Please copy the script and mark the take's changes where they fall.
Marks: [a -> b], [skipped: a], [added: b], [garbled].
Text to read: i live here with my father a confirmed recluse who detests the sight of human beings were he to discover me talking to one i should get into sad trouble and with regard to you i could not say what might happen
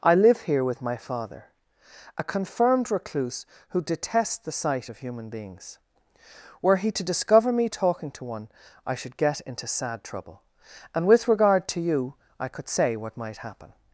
i live here with my father a confirmed recluse who detests the sight of human beings were he to discover me talking to one i should get into sad trouble and with regard to you i could [skipped: not] say what might happen